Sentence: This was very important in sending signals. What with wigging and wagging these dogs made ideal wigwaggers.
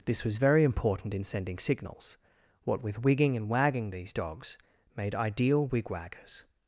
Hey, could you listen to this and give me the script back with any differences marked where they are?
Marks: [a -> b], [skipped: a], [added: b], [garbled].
This was very important in sending signals. What with wigging and wagging these dogs made ideal wigwaggers.